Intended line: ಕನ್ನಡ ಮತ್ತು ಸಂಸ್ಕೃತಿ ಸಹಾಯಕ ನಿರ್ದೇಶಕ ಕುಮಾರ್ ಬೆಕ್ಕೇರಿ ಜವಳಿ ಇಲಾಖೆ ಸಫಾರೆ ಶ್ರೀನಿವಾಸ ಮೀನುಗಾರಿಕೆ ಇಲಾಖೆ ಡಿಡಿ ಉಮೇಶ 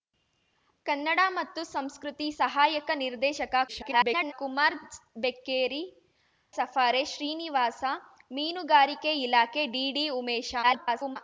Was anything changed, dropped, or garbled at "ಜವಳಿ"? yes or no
yes